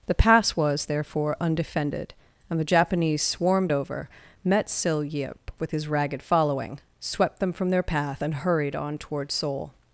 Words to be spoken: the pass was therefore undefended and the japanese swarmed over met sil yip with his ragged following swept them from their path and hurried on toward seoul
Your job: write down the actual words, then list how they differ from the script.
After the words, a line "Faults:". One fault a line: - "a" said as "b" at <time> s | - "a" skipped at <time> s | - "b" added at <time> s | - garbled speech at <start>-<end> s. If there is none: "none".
the pass was therefore undefended and the japanese swarmed over met sil yip with his ragged following swept them from their path and hurried on toward seoul
Faults:
none